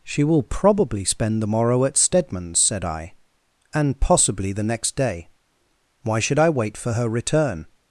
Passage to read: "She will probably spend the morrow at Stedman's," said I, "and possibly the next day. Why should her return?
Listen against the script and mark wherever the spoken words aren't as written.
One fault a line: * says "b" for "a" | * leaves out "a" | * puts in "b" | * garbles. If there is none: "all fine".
* puts in "I wait for"